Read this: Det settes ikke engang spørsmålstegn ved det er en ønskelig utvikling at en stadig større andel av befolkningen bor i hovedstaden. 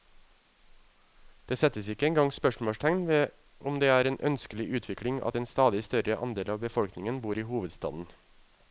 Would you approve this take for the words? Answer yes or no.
no